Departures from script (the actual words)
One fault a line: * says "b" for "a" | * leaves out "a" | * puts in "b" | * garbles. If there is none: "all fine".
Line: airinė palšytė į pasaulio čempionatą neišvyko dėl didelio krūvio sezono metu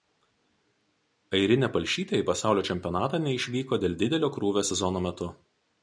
all fine